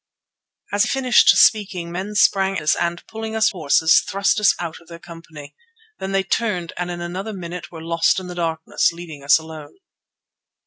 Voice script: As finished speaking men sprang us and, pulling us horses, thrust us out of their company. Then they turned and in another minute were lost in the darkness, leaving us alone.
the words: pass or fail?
pass